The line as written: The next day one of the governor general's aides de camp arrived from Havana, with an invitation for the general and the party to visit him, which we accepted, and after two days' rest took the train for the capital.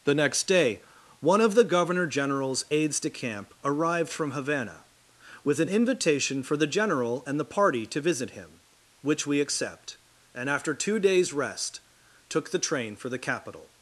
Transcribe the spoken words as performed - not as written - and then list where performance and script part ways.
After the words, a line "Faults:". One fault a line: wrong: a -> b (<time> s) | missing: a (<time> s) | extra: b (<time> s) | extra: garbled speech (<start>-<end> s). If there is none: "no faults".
The next day one of the governor general's aides de camp arrived from Havana, with an invitation for the general and the party to visit him, which we accept, and after two days' rest took the train for the capital.
Faults:
wrong: accepted -> accept (9.4 s)